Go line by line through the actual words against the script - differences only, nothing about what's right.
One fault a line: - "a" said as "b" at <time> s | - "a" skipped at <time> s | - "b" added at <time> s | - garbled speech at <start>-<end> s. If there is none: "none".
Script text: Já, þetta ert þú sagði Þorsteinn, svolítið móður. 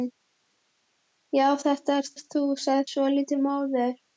- "ert" added at 2.2 s
- "Þorsteinn" skipped at 2.9 s